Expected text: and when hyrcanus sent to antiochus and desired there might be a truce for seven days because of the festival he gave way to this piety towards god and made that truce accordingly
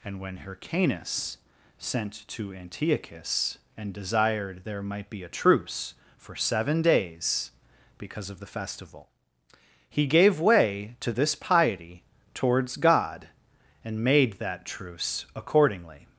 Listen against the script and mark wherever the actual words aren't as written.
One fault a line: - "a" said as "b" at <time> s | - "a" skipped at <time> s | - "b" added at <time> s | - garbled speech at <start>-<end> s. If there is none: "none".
none